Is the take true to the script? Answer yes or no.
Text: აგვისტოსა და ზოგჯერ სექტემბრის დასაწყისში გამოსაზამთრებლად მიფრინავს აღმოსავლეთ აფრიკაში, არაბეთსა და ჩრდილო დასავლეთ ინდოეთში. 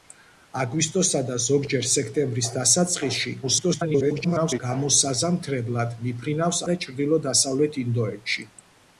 no